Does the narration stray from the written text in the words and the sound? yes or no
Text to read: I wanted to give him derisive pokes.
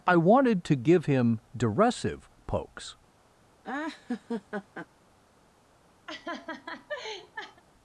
yes